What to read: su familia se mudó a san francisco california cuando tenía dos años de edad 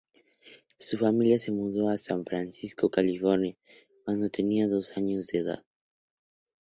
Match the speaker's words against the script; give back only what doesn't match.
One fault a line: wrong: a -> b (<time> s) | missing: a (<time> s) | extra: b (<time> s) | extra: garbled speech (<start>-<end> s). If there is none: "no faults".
no faults